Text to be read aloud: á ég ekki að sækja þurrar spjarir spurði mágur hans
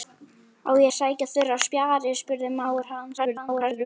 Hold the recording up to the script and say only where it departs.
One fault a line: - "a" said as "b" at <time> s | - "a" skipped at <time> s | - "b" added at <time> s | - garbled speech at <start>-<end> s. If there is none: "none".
- "ekki" skipped at 0.9 s
- garbled speech at 3.2-3.9 s